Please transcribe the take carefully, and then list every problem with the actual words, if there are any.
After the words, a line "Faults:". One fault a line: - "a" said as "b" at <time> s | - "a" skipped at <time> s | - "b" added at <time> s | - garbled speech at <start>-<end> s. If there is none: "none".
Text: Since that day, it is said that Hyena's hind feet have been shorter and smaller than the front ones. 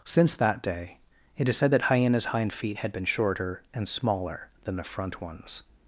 Since that day, it is said that Hyena's hind feet had been shorter and smaller than the front ones.
Faults:
- "have" said as "had" at 2.8 s